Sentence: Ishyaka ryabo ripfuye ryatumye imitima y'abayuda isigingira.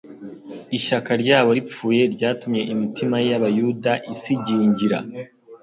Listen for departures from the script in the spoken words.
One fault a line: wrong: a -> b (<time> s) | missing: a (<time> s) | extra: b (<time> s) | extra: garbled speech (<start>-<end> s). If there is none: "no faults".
no faults